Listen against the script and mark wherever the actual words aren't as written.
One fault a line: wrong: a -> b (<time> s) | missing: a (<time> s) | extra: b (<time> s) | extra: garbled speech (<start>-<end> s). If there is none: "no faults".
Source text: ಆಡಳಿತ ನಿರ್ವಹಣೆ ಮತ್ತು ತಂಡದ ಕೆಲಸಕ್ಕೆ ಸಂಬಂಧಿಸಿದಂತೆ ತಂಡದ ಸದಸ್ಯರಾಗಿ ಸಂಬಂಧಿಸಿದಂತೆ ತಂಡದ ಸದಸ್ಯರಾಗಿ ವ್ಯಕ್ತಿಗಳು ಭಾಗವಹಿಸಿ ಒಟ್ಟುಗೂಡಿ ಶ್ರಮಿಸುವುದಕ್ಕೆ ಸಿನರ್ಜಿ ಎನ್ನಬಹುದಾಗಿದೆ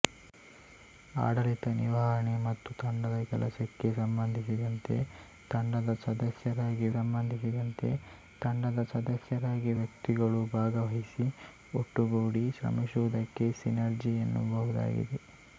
no faults